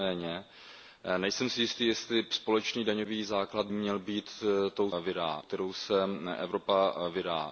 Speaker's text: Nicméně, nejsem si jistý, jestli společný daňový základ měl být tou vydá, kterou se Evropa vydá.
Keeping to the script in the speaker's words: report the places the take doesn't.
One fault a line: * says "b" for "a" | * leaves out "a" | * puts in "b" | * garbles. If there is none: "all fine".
all fine